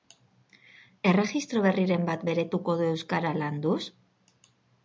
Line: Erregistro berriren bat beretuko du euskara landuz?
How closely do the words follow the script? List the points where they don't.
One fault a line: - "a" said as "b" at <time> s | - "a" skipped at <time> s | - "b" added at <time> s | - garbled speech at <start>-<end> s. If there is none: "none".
none